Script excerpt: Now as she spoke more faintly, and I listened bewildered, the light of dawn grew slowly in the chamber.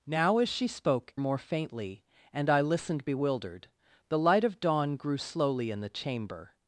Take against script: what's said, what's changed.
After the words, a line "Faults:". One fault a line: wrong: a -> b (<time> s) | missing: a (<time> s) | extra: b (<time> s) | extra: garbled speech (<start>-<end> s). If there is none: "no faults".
Now as she spoke more faintly, and I listened bewildered, the light of dawn grew slowly in the chamber.
Faults:
no faults